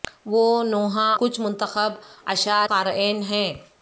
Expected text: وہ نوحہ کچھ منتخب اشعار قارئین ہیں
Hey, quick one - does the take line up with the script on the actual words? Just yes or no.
yes